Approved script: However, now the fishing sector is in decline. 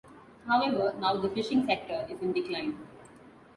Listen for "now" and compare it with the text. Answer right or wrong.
right